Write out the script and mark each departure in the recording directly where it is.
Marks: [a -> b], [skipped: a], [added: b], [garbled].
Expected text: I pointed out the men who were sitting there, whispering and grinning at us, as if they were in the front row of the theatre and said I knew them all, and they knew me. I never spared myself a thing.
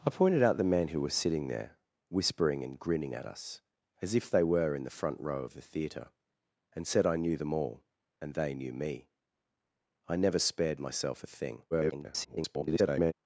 I pointed out the men who were sitting there, whispering and grinning at us, as if they were in the front row of the theatre and said I knew them all, and they knew me. I never spared myself a thing. [garbled]